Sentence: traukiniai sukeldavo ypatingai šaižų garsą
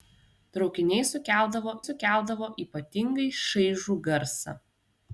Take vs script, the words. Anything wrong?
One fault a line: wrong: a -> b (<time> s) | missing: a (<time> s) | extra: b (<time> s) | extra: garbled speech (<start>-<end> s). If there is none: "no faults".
extra: sukeldavo (1.8 s)